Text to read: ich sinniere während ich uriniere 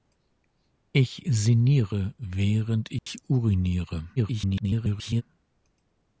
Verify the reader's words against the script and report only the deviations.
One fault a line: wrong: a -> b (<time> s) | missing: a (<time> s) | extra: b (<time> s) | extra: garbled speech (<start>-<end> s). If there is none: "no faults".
extra: garbled speech (4.2-5.2 s)